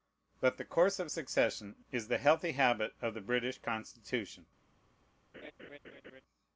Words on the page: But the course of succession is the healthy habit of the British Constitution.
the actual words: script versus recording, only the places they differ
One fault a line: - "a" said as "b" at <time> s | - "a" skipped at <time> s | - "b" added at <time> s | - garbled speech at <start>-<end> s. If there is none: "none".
none